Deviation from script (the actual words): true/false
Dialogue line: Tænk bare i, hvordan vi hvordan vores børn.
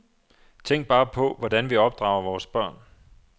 true